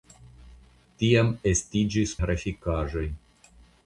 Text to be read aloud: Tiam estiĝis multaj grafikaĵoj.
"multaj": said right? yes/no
no